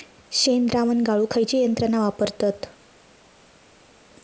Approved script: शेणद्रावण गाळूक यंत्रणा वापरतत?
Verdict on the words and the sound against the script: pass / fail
fail